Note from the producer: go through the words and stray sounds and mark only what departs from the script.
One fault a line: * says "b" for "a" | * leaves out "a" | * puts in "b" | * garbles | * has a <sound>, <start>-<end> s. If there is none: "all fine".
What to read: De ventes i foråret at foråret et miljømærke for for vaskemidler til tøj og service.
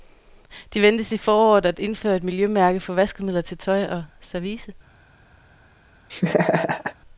* says "indføre" for "foråret"
* leaves out "for"
* has a laugh, 6.1-6.9 s